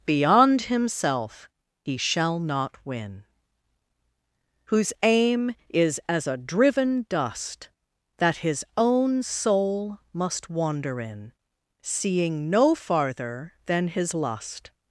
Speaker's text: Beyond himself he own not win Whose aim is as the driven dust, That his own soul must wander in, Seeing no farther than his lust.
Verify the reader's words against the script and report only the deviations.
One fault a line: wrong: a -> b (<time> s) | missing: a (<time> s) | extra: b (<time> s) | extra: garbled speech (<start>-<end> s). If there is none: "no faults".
wrong: own -> shall (2.0 s)
wrong: the -> a (6.3 s)